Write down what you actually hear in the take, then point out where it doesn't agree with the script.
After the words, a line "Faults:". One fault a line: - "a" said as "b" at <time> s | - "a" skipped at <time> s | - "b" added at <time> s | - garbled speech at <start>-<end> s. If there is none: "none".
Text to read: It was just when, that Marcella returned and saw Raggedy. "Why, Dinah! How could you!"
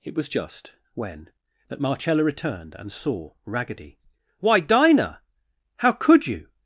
It was just when, that Marcella returned and saw Raggedy. "Why, Dinah! How could you!"
Faults:
none